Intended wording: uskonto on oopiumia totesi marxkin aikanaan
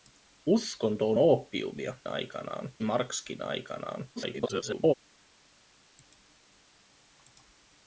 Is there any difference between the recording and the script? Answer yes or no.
yes